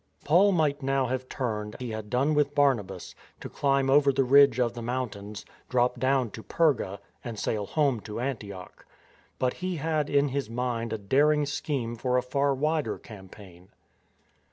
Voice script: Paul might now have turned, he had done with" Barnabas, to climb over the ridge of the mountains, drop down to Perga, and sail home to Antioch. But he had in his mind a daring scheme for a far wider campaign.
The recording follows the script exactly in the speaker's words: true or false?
true